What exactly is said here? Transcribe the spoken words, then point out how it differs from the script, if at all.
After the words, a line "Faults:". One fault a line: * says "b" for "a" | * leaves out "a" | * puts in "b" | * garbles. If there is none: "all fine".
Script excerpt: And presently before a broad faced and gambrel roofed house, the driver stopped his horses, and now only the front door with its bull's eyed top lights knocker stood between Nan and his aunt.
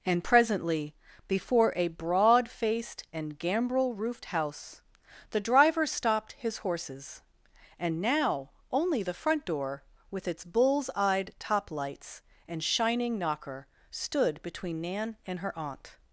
And presently before a broad faced and gambrel roofed house, the driver stopped his horses, and now only the front door with its bull's eyed top lights and shining knocker stood between Nan and her aunt.
Faults:
* puts in "and shining"
* says "her" for "his"